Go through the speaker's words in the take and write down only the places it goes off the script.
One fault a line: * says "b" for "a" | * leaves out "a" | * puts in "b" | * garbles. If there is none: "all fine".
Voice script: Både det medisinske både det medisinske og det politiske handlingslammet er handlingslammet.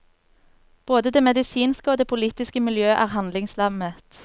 * leaves out "både det medisinske"
* says "miljø" for "handlingslammet"